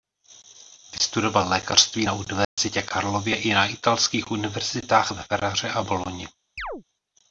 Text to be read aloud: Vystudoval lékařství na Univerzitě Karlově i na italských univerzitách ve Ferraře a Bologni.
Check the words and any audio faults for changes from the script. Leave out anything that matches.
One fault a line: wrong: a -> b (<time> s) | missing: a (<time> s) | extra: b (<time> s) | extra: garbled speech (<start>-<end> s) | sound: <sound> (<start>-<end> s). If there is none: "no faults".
sound: dropout (2.4-2.6 s)
sound: chirp (6.6-6.8 s)